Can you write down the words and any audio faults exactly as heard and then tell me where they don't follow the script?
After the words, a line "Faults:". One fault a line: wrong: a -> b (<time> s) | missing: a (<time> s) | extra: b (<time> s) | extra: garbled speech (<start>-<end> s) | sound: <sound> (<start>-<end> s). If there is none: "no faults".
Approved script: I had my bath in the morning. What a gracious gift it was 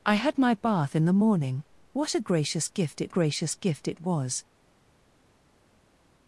I had my bath in the morning. What a gracious gift it gracious gift it was
Faults:
extra: gracious gift it (3.1 s)